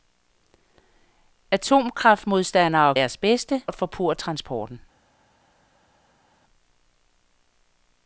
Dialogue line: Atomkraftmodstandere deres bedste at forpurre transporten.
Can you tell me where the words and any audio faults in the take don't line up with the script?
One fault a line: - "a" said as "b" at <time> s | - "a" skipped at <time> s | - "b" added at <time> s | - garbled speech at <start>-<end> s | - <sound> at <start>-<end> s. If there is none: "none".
none